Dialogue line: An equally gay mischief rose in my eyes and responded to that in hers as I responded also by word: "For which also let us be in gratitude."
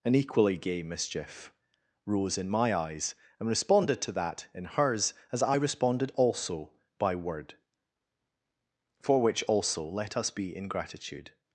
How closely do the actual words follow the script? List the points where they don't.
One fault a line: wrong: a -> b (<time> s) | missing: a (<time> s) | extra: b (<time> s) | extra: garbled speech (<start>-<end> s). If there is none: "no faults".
no faults